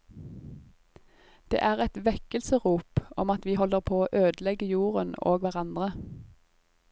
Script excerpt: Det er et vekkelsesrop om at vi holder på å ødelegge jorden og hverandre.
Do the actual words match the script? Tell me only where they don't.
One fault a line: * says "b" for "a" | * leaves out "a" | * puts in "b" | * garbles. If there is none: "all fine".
all fine